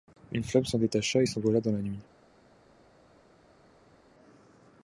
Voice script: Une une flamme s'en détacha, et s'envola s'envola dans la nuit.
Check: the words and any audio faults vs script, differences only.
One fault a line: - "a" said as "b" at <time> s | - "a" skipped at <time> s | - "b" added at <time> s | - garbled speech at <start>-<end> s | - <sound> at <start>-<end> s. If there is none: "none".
- "une" skipped at 0.4 s
- "s'envola" skipped at 1.6 s